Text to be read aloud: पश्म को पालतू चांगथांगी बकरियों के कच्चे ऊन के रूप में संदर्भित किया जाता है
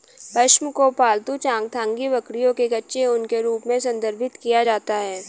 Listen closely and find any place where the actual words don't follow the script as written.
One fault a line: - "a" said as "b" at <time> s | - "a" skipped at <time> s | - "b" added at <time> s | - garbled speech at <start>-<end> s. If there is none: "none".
none